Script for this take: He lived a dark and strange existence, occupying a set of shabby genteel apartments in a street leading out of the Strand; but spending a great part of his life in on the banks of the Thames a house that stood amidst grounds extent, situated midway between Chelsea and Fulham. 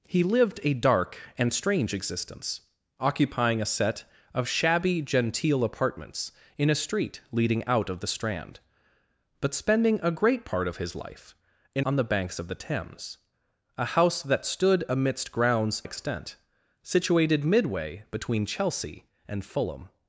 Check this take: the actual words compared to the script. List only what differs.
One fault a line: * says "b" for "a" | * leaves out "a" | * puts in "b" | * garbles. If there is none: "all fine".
all fine